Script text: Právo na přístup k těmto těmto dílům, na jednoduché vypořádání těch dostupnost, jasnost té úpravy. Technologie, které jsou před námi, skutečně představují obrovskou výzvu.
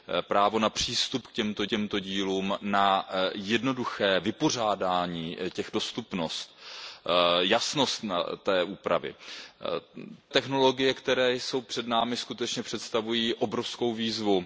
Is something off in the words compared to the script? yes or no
no